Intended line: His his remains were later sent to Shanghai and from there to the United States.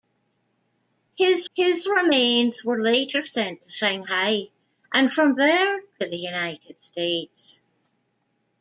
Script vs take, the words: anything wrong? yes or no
no